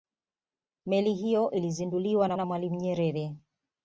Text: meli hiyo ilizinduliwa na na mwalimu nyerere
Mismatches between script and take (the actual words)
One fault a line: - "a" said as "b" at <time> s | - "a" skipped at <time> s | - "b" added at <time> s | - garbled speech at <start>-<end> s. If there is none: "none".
none